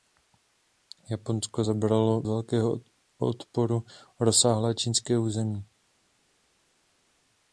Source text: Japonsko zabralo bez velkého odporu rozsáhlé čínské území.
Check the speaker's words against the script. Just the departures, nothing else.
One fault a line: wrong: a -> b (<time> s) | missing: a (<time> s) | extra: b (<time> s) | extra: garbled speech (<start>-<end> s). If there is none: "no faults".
missing: bez (2.2 s)